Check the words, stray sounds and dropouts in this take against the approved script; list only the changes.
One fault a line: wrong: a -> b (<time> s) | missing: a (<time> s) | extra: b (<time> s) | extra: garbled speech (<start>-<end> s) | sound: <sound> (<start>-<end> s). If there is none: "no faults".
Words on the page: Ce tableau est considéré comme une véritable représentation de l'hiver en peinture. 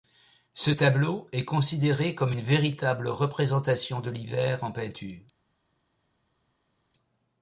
no faults